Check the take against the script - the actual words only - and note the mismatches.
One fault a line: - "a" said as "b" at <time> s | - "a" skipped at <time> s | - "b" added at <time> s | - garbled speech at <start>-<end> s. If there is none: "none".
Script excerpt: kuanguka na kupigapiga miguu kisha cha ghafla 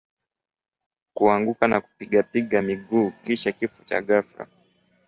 - "kifo" added at 3.5 s